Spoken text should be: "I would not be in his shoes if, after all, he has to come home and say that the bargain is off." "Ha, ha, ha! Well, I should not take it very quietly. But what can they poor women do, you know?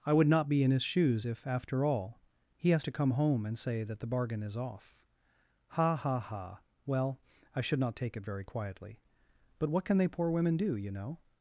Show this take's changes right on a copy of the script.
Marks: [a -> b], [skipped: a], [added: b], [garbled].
"I would not be in his shoes if, after all, he has to come home and say that the bargain is off." "Ha, ha, ha! Well, I should not take it very quietly. But what can they poor women do, you know?